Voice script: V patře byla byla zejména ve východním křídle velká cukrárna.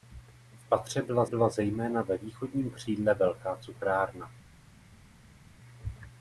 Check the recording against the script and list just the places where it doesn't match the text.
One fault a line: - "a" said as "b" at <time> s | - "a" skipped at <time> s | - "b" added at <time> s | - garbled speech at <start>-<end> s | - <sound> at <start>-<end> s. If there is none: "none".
none